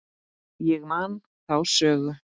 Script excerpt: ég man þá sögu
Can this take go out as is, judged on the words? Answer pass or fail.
pass